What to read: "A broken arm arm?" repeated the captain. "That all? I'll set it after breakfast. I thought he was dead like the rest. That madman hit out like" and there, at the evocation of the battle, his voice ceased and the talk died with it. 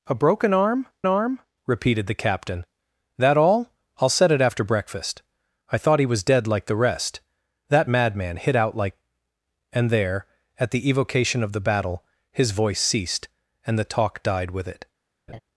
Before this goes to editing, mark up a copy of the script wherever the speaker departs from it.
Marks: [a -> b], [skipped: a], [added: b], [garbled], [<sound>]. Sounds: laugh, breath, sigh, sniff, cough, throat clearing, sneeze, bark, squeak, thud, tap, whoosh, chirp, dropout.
"A broken arm arm?" repeated the captain. "That all? I'll set it after breakfast. I thought he was dead like the rest. That madman hit out like" and there, at the evocation of the battle, his voice ceased and the talk died with it. [laugh]